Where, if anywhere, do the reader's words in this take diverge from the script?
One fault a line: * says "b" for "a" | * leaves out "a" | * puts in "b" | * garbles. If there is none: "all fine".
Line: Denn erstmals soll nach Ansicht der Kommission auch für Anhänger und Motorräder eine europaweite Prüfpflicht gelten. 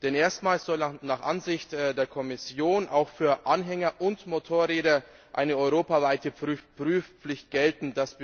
all fine